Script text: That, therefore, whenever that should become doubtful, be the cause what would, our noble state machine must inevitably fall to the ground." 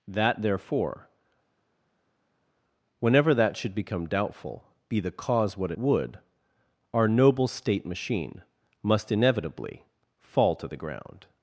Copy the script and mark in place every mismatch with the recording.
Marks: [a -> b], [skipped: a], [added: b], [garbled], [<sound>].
That, therefore, whenever that should become doubtful, be the cause what would, our noble state machine must inevitably fall to the ground."